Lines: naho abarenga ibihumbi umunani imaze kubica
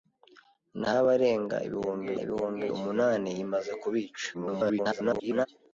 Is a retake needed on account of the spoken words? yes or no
yes